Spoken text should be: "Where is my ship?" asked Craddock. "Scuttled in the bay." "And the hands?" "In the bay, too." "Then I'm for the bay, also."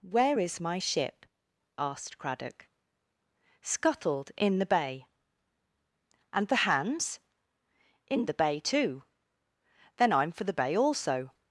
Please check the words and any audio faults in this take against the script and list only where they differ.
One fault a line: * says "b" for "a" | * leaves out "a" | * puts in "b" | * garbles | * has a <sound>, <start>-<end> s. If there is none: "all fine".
all fine